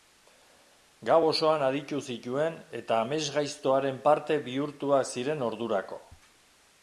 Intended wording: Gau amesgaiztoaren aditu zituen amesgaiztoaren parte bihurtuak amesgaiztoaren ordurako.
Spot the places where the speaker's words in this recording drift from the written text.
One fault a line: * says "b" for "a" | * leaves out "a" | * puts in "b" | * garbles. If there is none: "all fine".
* says "osoan" for "amesgaiztoaren"
* puts in "eta"
* says "ziren" for "amesgaiztoaren"